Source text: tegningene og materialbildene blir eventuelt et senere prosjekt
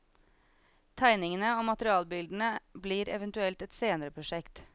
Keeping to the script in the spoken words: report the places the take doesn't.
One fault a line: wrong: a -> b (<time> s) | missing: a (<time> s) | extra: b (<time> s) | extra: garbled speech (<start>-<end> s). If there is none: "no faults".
no faults